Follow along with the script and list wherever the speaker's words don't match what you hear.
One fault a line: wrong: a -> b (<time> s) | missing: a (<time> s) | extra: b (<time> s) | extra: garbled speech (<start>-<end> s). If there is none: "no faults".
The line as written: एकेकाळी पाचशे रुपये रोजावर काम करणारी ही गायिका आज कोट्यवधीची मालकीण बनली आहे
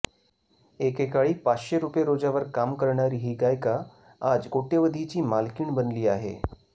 no faults